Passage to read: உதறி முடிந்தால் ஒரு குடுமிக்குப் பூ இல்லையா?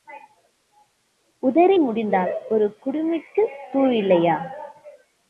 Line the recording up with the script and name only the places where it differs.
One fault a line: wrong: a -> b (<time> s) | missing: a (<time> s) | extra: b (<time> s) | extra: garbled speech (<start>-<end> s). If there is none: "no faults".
no faults